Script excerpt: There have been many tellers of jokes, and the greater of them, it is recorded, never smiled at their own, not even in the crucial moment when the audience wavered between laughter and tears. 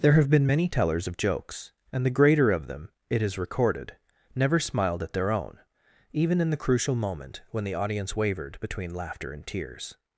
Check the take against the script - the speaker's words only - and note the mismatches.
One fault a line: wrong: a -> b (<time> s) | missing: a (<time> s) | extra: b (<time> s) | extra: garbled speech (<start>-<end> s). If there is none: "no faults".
missing: not (5.6 s)